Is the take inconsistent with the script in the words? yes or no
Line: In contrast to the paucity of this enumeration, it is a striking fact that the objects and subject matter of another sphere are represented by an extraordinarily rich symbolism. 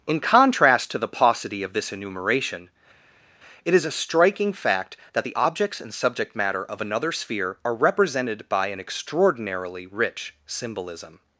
no